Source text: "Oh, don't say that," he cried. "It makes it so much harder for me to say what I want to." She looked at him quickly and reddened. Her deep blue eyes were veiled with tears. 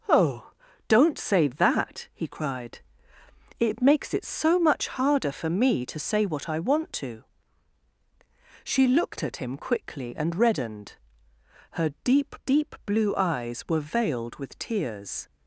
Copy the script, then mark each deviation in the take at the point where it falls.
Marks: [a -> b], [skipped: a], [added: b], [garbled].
"Oh, don't say that," he cried. "It makes it so much harder for me to say what I want to." She looked at him quickly and reddened. Her deep [added: deep] blue eyes were veiled with tears.